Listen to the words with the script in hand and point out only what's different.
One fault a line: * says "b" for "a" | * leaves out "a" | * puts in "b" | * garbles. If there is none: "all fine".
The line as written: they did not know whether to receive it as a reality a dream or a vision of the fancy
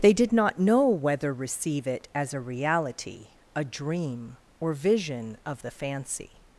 * leaves out "to"
* leaves out "a"